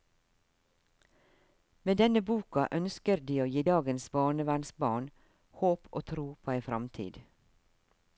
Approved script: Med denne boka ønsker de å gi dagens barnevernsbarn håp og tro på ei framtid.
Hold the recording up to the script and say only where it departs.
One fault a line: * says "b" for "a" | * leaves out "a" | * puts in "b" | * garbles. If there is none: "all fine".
all fine